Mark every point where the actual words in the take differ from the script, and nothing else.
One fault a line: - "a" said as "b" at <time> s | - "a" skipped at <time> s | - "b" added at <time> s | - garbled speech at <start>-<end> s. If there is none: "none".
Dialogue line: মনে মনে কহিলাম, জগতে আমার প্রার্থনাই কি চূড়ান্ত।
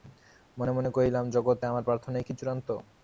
none